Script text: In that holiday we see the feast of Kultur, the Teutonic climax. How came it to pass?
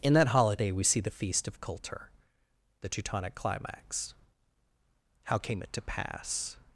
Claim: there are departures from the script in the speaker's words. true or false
false